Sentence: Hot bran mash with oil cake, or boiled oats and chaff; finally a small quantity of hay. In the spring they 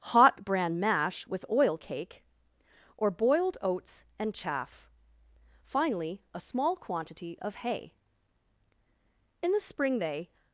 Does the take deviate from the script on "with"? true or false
false